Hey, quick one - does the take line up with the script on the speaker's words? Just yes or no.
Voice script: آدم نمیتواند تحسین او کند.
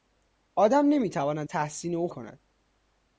yes